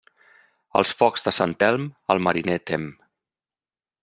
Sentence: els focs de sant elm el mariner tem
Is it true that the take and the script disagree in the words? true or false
false